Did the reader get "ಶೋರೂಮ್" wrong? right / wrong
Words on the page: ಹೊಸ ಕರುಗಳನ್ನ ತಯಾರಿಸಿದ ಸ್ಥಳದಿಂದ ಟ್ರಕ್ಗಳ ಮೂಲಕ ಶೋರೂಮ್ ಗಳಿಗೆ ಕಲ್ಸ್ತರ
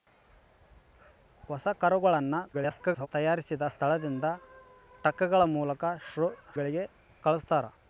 wrong